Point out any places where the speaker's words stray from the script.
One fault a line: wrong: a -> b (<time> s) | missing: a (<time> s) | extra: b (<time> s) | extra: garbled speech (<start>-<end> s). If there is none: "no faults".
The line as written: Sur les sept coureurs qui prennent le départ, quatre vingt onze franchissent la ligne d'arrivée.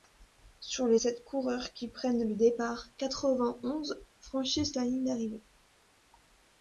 no faults